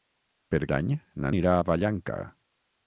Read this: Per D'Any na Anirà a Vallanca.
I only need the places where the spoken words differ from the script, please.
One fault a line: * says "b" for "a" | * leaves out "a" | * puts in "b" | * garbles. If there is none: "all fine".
all fine